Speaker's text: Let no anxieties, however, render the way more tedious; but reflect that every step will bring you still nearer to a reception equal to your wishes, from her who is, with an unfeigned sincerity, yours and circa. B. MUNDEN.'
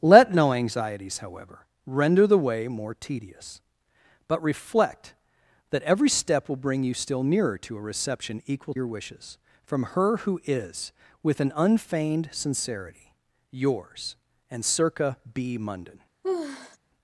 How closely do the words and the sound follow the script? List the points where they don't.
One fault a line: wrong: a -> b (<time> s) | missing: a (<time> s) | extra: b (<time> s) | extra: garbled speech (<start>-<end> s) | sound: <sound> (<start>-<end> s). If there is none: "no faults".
missing: to (8.7 s)
sound: sigh (16.2-16.8 s)